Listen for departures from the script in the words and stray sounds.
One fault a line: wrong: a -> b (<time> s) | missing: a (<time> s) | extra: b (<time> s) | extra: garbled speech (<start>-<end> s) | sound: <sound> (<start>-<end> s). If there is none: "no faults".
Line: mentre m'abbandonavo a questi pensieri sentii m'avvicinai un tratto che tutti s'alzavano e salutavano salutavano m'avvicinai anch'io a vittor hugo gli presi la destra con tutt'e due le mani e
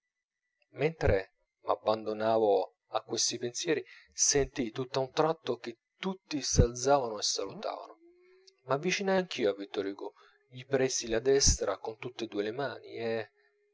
wrong: m'avvicinai -> tutt'a (4.7 s)
missing: salutavano (8.0 s)